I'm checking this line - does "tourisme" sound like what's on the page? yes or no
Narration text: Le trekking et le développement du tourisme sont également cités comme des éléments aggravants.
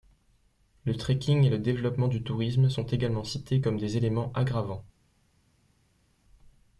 yes